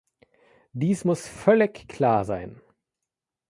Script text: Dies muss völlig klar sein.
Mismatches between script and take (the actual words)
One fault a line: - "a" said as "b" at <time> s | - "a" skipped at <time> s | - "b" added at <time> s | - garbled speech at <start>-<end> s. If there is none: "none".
none